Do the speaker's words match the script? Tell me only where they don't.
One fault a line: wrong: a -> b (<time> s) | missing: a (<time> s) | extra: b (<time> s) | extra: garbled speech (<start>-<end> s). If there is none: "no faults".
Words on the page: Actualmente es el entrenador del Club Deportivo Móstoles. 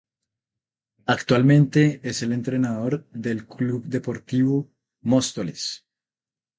no faults